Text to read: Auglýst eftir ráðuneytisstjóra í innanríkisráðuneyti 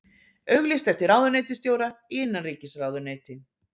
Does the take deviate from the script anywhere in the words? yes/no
no